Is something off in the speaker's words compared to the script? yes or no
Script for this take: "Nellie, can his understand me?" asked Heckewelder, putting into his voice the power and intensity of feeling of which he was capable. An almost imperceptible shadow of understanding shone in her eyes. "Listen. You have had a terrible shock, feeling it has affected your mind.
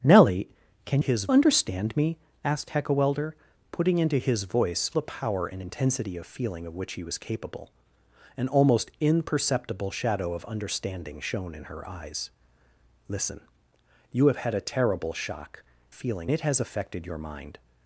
no